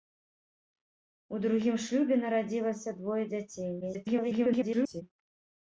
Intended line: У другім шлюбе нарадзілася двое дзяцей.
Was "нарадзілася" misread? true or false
false